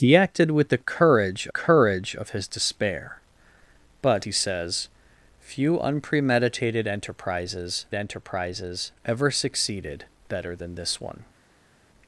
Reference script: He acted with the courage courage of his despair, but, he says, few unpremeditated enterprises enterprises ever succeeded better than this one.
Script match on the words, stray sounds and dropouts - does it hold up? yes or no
yes